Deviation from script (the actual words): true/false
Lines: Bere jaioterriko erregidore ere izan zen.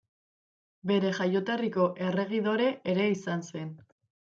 false